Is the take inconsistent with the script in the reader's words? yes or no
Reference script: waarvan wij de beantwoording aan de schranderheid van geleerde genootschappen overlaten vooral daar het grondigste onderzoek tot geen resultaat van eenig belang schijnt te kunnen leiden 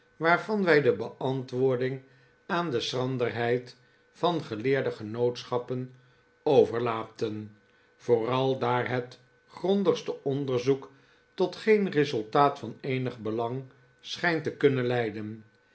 no